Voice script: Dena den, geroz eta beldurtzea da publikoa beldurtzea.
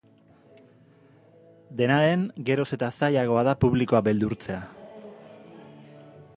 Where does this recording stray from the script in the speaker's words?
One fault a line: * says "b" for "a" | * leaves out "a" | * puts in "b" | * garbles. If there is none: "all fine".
* says "zailagoa" for "beldurtzea"